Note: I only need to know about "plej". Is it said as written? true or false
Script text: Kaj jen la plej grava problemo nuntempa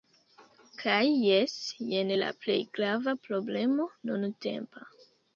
true